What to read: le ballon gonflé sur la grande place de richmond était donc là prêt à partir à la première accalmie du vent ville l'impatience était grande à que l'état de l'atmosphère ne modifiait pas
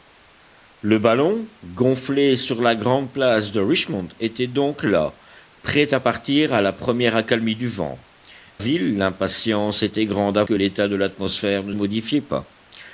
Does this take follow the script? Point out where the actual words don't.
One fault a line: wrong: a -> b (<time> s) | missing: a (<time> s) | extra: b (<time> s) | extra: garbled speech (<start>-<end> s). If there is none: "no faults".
no faults